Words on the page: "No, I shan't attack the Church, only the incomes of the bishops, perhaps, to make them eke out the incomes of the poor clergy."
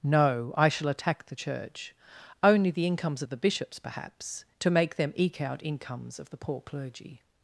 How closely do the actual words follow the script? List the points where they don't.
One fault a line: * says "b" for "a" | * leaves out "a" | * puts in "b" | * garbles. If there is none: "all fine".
* says "shall" for "shan't"
* leaves out "the"